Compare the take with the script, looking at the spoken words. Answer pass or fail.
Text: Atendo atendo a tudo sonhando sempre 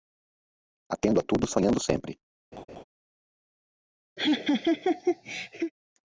fail